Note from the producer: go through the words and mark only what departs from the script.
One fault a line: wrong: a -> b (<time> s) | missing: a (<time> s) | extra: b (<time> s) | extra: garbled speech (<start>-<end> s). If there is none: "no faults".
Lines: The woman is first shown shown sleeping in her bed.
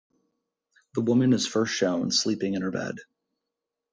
missing: shown (2.1 s)